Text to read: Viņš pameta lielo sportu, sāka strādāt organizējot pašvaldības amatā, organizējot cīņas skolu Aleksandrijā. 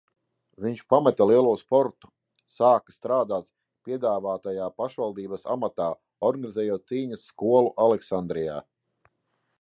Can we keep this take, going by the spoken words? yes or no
no